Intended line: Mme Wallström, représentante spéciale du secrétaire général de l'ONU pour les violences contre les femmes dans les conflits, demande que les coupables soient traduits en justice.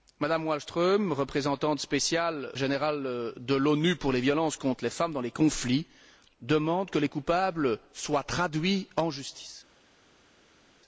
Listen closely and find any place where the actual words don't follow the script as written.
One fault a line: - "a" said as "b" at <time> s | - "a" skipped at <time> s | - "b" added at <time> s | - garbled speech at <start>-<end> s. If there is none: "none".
- "du secrétaire" skipped at 2.5 s